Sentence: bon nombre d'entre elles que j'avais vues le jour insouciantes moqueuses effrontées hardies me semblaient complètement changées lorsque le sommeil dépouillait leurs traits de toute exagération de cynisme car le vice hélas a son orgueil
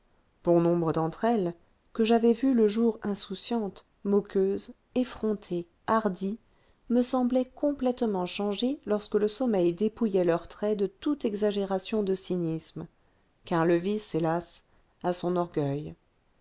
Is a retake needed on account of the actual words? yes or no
no